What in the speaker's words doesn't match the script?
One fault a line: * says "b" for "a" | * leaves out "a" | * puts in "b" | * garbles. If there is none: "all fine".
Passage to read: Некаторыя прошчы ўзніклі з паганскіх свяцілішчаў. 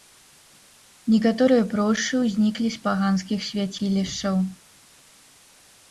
all fine